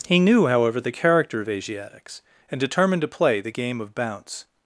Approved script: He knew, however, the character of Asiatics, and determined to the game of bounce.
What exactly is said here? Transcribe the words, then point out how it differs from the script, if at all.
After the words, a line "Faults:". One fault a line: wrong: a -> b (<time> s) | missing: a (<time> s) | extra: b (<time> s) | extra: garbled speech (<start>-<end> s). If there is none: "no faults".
He knew, however, the character of Asiatics, and determined to play the game of bounce.
Faults:
extra: play (3.1 s)